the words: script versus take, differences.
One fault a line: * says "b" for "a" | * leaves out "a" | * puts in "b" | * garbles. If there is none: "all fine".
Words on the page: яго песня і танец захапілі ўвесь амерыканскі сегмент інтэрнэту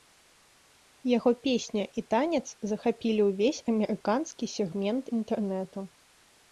all fine